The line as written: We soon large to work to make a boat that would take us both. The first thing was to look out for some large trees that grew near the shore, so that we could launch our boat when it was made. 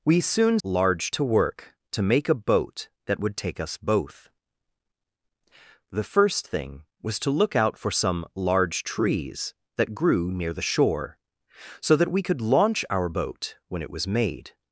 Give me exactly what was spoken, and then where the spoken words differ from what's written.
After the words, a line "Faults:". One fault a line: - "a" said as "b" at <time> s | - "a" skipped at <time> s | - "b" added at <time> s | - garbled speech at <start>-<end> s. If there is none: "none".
We soon large to work to make a boat that would take us both. The first thing was to look out for some large trees that grew near the shore, so that we could launch our boat when it was made.
Faults:
none